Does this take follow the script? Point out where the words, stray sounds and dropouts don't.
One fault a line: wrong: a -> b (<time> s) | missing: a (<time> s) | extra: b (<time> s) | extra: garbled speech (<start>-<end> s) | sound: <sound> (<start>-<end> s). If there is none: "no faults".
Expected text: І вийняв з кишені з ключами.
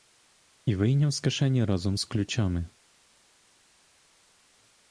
extra: разом (1.6 s)